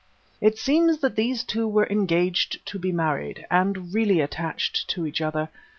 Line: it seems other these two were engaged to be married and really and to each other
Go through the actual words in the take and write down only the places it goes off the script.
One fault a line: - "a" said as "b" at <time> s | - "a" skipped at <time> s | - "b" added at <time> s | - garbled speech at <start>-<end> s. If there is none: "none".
- "other" said as "that" at 1.0 s
- "and" said as "attached" at 4.2 s